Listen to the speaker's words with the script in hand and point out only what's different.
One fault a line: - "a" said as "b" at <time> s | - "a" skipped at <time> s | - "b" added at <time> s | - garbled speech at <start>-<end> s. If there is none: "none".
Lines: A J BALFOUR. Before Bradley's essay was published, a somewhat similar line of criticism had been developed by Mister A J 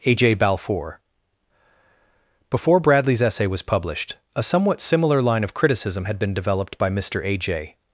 none